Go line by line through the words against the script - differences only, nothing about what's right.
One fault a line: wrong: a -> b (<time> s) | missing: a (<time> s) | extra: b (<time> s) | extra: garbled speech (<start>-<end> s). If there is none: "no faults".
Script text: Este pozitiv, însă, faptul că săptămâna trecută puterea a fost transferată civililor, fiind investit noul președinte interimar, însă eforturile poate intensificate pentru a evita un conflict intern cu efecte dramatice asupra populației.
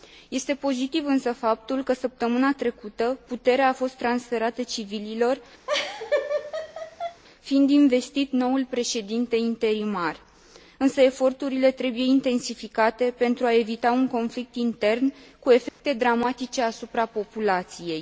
wrong: poate -> trebuie (11.7 s)